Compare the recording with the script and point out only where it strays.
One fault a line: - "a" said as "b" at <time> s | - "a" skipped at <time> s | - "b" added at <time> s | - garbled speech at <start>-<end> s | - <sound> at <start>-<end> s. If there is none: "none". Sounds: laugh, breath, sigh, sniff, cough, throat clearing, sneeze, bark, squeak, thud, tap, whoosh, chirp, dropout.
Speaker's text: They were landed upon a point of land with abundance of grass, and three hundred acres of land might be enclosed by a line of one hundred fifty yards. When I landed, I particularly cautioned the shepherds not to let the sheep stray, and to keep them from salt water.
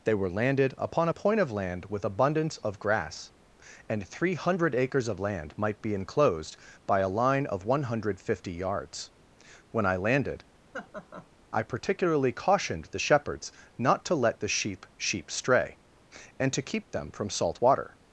- laugh at 10.7-11.3 s
- "sheep" added at 15.0 s